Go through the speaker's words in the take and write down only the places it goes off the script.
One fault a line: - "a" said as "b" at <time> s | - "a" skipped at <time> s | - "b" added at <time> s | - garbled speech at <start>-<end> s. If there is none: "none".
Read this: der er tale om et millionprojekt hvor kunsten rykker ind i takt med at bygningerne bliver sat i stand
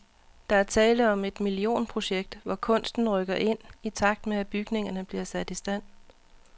none